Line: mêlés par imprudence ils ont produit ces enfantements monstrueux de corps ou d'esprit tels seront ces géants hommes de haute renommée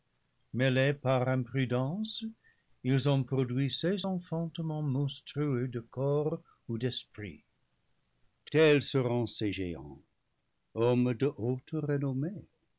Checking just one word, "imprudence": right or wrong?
right